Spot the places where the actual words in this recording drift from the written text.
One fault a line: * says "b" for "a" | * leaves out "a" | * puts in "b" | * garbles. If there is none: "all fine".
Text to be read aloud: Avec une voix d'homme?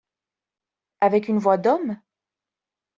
all fine